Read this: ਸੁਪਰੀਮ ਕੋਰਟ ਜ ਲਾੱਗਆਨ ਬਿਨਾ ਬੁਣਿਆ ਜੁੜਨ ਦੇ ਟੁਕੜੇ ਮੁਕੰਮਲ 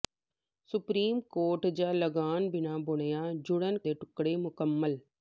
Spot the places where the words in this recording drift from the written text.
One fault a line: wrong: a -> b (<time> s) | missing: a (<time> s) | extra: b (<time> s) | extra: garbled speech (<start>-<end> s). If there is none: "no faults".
no faults